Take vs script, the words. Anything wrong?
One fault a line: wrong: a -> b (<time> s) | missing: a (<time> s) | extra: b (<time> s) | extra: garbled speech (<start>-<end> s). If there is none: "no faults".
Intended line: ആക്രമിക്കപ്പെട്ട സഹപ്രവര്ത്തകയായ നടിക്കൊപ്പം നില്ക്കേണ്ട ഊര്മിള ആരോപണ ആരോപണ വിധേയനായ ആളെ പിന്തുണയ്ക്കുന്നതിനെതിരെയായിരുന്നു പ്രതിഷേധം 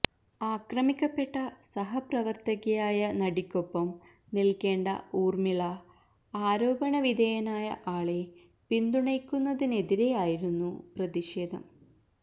missing: ആരോപണ (7.0 s)